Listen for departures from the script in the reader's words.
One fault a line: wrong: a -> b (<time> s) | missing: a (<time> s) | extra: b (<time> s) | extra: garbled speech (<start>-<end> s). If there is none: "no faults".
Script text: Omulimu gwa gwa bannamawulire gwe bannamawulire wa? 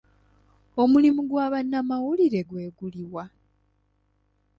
missing: gwa (1.4 s)
wrong: bannamawulire -> guli (2.8 s)